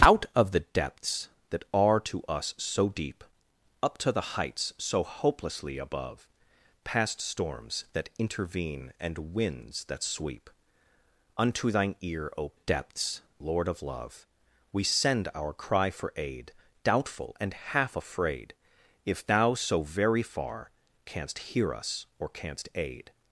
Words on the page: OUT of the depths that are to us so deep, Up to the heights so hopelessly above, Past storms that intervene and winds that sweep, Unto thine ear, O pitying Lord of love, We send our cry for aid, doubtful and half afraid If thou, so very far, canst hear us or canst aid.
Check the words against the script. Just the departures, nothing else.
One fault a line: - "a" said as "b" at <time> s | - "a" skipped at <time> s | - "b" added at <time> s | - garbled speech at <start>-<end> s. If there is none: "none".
- "pitying" said as "depths" at 12.5 s